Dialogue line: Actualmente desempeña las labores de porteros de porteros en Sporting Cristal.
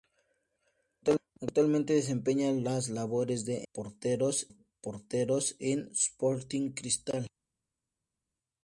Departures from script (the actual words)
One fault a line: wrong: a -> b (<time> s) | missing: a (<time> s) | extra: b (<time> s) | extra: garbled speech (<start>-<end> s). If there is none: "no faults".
no faults